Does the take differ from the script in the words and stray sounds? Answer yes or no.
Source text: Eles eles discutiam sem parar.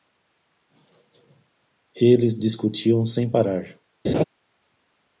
yes